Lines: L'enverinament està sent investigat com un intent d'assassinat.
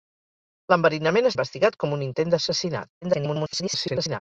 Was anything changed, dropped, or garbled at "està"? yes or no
yes